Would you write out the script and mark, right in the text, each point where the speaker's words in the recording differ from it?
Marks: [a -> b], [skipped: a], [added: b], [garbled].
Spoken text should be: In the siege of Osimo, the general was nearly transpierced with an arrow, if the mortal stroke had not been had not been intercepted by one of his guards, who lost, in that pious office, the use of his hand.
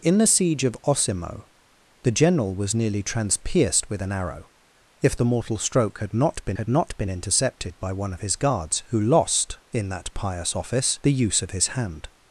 In the siege of Osimo, the general was nearly transpierced with an arrow, if the mortal stroke had not been had not been intercepted by one of his guards, who lost, in that pious office, the use of his hand.